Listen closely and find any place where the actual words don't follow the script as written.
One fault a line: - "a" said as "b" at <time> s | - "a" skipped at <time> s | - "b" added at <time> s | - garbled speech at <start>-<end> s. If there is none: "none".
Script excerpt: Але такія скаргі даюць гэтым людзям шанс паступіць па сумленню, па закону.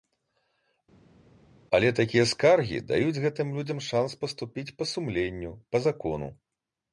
none